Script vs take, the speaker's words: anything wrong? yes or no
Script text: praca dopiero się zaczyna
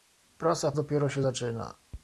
no